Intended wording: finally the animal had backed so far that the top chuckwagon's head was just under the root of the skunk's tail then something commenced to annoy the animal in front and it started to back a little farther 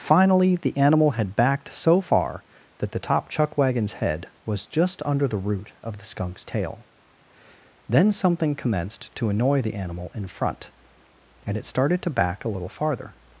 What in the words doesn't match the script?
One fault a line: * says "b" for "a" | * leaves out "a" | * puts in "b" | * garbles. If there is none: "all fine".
all fine